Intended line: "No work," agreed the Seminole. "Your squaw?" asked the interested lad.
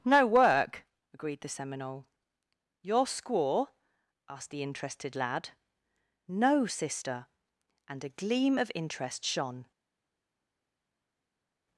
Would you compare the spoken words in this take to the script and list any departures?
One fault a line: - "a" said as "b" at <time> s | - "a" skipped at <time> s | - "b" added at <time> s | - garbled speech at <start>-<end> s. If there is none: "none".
- "No sister and a gleam of interest shone" added at 6.3 s